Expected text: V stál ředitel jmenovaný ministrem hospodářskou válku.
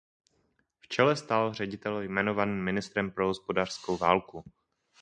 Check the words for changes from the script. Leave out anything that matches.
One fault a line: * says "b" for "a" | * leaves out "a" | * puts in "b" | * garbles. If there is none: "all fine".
* puts in "čele"
* puts in "pro"